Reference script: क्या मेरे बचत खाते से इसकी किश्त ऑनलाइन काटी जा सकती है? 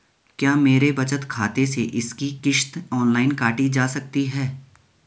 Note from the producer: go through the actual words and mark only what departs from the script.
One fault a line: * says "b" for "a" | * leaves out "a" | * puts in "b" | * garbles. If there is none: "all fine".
all fine